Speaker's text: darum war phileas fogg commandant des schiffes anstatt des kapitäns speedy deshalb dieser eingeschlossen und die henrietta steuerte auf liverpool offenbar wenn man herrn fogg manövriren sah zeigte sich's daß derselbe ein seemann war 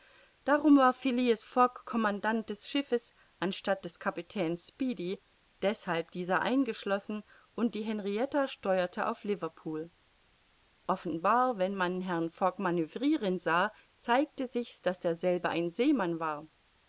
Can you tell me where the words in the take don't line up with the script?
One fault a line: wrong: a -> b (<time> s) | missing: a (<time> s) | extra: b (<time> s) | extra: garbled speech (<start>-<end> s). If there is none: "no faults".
no faults